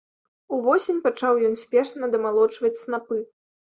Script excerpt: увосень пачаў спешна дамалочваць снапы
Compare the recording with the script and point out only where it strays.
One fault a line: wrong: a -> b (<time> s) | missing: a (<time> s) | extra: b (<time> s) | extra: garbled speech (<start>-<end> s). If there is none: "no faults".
extra: ён (1.5 s)